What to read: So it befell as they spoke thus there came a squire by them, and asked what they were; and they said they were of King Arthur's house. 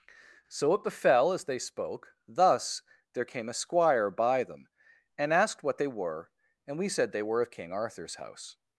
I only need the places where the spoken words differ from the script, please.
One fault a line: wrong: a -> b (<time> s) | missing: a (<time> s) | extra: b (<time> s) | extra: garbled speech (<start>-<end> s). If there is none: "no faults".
wrong: they -> we (6.8 s)